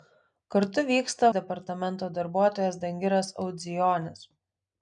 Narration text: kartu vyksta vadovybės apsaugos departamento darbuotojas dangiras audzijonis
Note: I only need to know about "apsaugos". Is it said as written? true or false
false